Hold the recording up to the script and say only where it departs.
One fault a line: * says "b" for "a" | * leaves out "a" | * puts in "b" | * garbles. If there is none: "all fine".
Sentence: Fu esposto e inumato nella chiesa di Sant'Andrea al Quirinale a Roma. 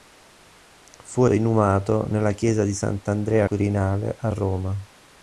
* leaves out "esposto"
* leaves out "al"